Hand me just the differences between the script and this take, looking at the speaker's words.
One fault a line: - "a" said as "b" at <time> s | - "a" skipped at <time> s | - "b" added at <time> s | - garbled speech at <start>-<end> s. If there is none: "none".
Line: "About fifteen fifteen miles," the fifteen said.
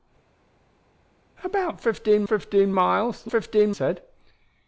none